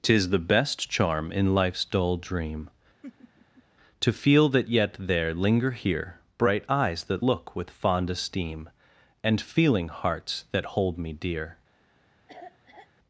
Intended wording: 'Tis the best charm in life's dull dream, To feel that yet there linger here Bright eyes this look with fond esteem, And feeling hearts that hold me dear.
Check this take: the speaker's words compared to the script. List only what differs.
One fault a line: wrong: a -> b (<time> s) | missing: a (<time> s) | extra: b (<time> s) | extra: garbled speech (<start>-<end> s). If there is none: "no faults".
wrong: this -> that (7.0 s)